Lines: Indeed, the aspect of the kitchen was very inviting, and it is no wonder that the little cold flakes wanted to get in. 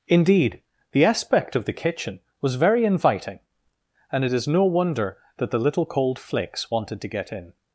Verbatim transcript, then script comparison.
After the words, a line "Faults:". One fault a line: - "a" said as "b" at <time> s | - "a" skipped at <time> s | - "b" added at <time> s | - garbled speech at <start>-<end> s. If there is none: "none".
Indeed, the aspect of the kitchen was very inviting, and it is no wonder that the little cold flakes wanted to get in.
Faults:
none